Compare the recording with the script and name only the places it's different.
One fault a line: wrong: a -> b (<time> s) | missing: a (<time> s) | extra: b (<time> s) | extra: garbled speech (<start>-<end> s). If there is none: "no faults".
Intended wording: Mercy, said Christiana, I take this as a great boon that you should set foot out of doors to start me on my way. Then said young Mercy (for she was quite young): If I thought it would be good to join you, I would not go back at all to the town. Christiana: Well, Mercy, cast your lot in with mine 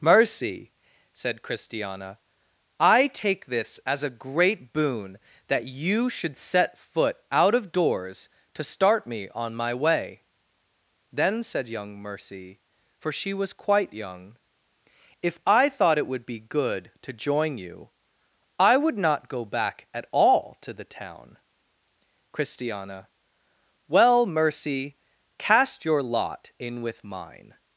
no faults